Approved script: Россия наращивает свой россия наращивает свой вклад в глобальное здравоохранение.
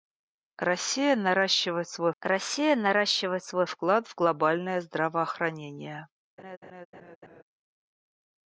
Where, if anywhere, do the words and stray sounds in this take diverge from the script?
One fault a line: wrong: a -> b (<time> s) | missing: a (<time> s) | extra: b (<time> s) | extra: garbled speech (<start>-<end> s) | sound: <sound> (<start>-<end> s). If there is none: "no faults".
sound: laugh (6.4-7.4 s)